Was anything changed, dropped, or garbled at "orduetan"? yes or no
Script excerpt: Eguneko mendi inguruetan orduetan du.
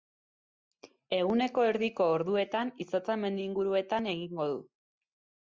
yes